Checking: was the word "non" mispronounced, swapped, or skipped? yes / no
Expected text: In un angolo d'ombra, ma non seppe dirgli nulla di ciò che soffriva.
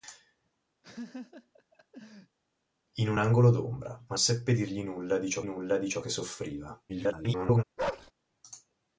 yes